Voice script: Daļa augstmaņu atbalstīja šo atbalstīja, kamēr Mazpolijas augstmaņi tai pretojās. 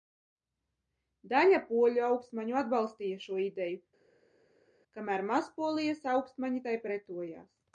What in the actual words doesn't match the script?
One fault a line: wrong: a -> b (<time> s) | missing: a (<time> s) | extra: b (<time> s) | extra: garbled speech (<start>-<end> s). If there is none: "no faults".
extra: poļu (1.7 s)
wrong: atbalstīja -> ideju (3.5 s)